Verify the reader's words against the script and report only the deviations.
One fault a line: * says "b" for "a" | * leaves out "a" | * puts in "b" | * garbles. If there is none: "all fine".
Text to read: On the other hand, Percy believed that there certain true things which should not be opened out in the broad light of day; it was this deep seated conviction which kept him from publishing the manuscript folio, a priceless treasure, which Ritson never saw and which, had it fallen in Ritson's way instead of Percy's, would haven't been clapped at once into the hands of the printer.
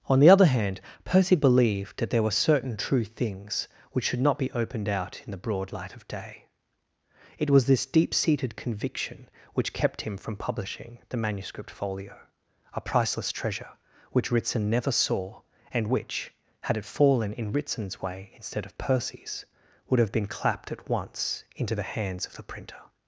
* puts in "were"
* says "have" for "haven't"